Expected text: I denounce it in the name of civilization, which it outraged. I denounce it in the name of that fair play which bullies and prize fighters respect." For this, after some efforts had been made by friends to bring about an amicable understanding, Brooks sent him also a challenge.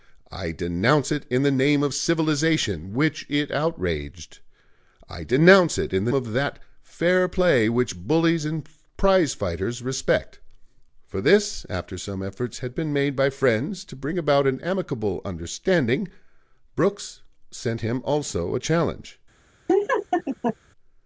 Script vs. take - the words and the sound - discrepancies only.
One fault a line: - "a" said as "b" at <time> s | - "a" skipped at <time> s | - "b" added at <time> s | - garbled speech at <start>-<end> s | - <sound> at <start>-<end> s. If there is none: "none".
- "name" skipped at 6.1 s
- laugh at 19.7-20.6 s